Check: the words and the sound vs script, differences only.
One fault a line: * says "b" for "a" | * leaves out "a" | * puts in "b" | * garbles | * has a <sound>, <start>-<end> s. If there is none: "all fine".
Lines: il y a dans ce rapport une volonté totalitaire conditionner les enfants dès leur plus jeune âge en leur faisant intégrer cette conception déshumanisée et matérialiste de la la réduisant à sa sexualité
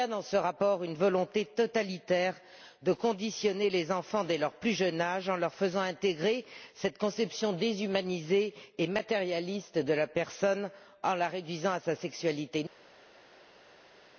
* puts in "de"
* puts in "personne en"